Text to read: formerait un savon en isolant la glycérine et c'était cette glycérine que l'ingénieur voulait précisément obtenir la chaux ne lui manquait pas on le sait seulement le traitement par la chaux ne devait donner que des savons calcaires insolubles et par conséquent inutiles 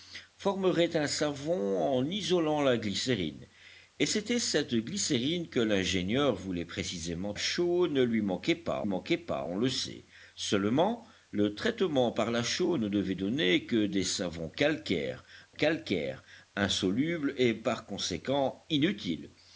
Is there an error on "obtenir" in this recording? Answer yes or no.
yes